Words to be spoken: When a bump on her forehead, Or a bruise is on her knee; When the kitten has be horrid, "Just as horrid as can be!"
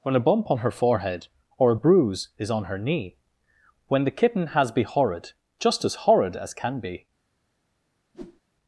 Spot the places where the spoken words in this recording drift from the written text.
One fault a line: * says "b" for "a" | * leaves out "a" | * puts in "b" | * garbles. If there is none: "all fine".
all fine